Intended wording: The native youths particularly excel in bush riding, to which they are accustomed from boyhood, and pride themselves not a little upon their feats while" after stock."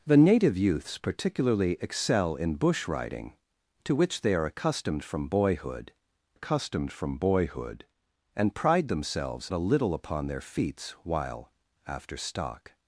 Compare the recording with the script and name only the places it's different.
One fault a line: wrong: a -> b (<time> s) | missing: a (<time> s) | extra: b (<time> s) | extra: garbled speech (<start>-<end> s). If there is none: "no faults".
extra: accustomed from boyhood (6.3 s)
missing: not (9.5 s)